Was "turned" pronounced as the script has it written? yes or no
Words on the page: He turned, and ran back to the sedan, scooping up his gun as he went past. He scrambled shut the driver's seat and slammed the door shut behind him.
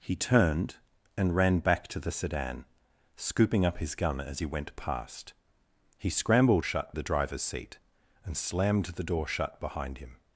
yes